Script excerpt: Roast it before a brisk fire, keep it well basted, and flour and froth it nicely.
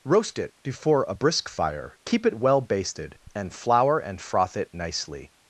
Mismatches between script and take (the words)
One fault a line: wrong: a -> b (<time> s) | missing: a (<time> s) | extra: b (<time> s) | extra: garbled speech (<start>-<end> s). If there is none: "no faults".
no faults